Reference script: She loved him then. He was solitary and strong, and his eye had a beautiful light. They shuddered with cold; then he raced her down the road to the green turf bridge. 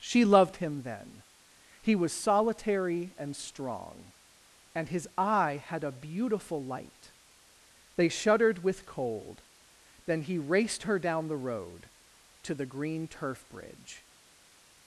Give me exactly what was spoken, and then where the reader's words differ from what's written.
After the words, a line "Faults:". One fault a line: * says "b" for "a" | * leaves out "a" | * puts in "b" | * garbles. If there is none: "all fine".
She loved him then. He was solitary and strong, and his eye had a beautiful light. They shuddered with cold; then he raced her down the road to the green turf bridge.
Faults:
all fine